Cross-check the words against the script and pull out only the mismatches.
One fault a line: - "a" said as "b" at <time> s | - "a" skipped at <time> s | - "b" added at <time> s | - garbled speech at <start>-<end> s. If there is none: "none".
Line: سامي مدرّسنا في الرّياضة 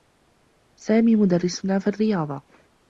none